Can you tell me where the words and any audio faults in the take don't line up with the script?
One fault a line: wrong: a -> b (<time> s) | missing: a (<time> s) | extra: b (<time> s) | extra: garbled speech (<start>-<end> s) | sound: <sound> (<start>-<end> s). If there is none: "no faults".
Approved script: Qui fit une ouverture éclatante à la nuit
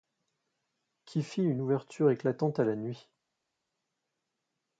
no faults